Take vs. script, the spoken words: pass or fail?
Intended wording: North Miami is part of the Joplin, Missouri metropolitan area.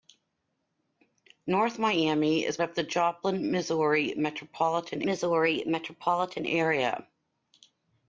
fail